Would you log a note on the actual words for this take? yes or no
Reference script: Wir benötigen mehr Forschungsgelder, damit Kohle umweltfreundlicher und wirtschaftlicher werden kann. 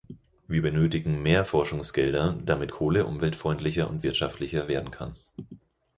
no